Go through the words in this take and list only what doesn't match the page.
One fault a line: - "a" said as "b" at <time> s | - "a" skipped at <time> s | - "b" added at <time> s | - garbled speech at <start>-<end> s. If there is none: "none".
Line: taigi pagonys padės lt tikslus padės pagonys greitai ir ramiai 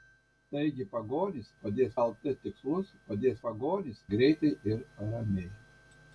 none